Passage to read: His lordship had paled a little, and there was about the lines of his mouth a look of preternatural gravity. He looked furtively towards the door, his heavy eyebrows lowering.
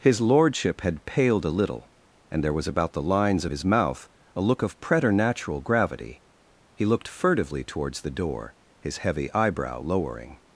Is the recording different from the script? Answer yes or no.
yes